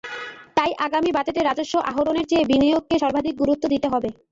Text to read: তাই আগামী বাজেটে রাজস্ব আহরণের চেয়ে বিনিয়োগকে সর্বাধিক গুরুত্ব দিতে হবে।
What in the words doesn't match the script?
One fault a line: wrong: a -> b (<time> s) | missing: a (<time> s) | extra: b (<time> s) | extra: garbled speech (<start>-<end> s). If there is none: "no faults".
no faults